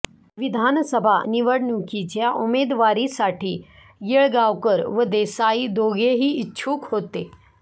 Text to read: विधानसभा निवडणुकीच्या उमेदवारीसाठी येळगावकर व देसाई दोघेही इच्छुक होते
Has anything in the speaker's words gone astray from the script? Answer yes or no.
no